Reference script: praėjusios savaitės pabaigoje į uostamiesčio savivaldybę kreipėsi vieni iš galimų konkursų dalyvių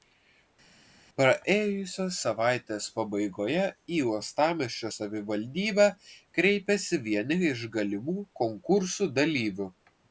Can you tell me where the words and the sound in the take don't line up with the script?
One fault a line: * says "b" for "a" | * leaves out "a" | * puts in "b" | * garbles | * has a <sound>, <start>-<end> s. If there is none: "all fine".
all fine